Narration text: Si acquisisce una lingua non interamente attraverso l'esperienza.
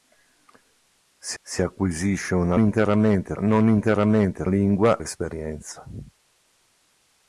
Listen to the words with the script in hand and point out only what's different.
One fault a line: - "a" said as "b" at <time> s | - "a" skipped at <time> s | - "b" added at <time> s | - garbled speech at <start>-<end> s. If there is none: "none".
- "si" added at 1.4 s
- "lingua" said as "interamente" at 2.6 s
- "attraverso" said as "lingua" at 4.5 s